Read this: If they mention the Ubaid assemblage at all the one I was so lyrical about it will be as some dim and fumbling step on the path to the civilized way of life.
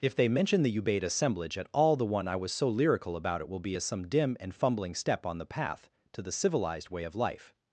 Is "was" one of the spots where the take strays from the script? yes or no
no